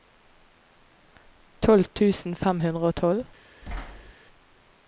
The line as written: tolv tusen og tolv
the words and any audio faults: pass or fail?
fail